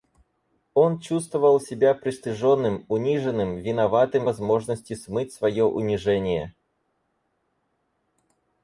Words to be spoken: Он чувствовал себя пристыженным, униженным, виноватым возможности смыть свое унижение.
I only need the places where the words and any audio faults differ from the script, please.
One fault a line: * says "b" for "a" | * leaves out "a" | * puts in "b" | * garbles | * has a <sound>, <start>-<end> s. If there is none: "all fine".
all fine